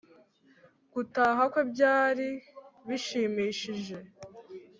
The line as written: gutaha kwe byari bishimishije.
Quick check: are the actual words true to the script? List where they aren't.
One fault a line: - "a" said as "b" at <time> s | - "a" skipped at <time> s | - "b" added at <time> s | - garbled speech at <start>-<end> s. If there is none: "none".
none